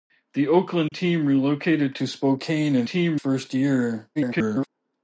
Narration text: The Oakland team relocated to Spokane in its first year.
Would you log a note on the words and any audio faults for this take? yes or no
yes